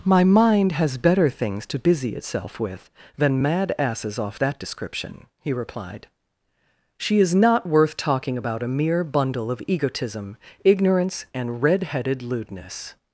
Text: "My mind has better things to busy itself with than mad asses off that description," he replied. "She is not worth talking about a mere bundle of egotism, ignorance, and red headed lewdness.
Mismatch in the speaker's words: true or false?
false